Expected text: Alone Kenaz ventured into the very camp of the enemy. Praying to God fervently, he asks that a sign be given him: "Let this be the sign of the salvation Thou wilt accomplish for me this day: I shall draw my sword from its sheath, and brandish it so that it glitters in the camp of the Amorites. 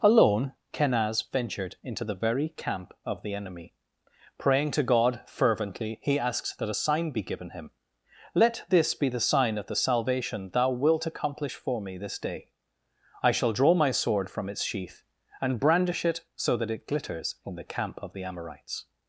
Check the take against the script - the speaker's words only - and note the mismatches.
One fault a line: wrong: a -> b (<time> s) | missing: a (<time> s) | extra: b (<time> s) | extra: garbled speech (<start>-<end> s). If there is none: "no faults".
no faults